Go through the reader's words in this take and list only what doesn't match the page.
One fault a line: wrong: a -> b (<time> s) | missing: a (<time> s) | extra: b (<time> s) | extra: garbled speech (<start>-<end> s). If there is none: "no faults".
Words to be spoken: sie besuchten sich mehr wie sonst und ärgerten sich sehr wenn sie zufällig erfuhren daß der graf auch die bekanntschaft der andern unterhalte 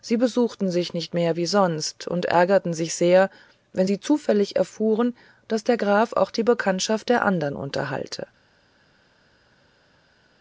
extra: nicht (0.9 s)